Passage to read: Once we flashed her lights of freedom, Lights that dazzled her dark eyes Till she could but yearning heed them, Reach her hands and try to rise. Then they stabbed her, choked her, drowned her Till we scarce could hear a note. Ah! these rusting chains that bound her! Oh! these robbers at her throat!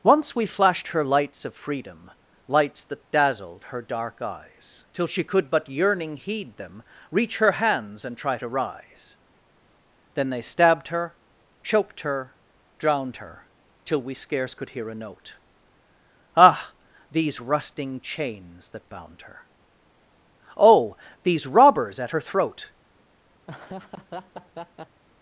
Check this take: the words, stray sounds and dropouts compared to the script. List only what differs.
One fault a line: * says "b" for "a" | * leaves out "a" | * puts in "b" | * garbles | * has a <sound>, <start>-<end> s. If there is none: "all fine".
* has a laugh, 23.5-25.0 s